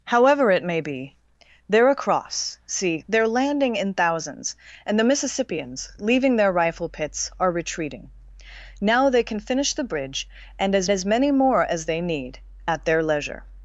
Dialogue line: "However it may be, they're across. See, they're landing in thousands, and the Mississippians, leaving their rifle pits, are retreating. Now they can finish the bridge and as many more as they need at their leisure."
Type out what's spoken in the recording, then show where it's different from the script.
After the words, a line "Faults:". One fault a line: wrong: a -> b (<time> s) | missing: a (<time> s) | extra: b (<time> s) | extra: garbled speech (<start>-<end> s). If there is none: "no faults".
"However it may be, they're across. See, they're landing in thousands, and the Mississippians, leaving their rifle pits, are retreating. Now they can finish the bridge and as as many more as they need at their leisure."
Faults:
extra: as (10.9 s)